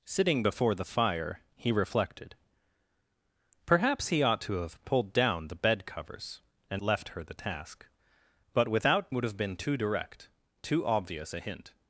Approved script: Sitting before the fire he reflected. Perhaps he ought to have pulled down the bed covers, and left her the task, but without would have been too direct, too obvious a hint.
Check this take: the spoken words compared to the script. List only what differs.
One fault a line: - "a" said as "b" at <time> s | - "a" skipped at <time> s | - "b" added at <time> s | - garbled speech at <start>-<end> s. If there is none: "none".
none